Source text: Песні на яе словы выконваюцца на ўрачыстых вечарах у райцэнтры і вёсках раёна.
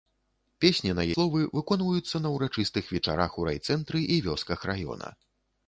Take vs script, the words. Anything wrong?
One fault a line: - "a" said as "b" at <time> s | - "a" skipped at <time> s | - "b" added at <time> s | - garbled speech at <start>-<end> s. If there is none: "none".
- "яе" skipped at 1.0 s